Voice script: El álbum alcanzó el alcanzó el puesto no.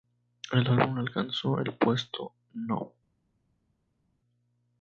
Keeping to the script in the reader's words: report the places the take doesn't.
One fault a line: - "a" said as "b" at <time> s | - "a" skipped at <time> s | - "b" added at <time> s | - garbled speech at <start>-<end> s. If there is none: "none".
- "alcanzó el" skipped at 1.8 s